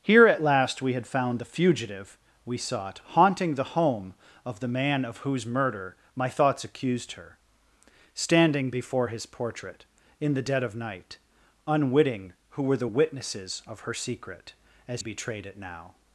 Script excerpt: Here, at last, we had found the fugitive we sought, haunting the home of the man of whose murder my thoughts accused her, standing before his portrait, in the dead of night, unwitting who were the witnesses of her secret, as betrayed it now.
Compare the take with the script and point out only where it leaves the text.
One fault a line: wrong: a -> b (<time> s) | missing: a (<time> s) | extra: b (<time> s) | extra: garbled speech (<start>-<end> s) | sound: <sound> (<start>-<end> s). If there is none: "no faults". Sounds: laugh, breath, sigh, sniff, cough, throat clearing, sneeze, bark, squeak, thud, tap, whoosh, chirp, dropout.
no faults